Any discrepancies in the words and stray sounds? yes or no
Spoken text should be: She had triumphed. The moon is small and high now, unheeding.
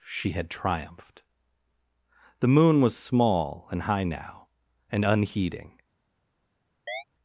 yes